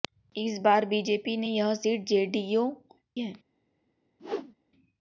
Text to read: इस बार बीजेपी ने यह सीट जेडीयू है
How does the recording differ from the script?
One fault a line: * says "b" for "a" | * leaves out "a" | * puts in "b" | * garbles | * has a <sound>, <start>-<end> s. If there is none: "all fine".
* has a whoosh, 4.2-4.5 s